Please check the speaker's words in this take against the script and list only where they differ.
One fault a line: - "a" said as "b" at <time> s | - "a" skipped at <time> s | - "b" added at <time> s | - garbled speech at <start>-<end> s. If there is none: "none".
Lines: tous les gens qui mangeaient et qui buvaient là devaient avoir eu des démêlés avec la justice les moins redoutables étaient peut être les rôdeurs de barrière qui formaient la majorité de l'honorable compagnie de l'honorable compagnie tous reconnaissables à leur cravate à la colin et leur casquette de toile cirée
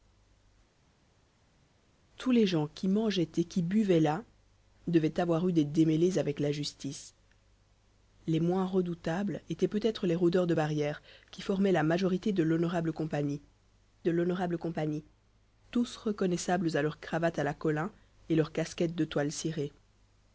none